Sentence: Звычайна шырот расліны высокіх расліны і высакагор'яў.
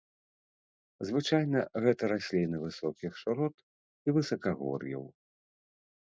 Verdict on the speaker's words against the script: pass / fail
fail